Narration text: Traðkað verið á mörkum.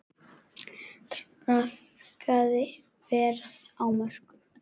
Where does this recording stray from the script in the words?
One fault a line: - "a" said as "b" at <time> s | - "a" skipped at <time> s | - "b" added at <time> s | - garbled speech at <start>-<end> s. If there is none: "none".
none